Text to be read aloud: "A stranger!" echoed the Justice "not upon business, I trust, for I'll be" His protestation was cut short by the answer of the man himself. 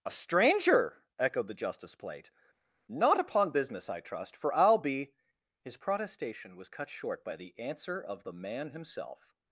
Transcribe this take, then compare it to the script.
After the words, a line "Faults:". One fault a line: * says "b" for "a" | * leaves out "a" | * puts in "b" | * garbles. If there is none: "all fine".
"A stranger!" echoed the Justice plate "not upon business, I trust, for I'll be" His protestation was cut short by the answer of the man himself.
Faults:
* puts in "plate"